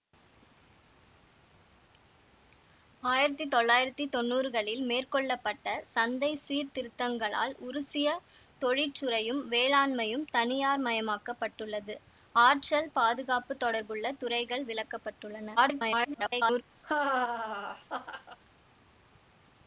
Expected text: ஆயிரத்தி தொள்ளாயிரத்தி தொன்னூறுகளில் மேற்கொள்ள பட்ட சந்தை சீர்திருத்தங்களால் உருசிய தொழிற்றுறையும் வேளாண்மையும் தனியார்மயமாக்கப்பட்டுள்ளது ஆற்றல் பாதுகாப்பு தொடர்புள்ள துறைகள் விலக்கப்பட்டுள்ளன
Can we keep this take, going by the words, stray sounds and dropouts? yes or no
no